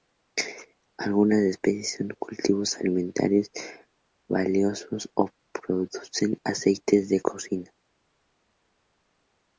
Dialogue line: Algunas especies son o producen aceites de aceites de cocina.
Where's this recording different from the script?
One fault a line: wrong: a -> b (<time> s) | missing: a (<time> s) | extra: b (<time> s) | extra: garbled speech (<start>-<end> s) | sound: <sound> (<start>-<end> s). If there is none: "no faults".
extra: cultivos alimentarios valiosos (2.2 s)
missing: aceites de (7.2 s)